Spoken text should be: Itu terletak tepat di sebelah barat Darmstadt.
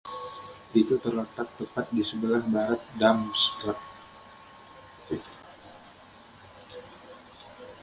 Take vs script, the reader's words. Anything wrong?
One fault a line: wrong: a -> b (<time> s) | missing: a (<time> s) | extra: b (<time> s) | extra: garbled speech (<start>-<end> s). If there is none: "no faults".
no faults